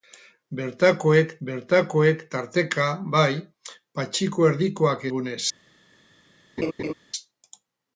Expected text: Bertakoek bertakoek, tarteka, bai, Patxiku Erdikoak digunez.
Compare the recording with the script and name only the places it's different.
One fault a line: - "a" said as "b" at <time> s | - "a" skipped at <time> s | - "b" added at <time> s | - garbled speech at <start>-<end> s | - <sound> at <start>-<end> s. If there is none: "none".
- laugh at 6.6-6.9 s